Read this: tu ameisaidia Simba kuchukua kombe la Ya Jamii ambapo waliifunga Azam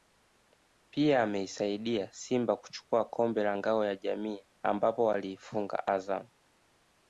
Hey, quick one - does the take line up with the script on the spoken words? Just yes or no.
no